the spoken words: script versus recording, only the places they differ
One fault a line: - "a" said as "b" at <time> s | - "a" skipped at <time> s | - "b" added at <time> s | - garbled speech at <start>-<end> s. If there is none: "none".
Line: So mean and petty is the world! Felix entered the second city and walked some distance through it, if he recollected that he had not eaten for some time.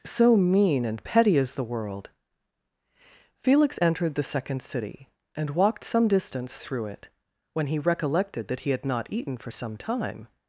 - "if" said as "when" at 7.5 s